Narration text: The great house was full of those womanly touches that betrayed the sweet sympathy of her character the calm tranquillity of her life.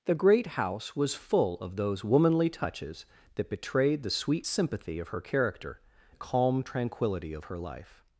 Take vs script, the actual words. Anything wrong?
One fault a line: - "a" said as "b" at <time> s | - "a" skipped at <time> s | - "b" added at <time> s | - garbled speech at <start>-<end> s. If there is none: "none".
none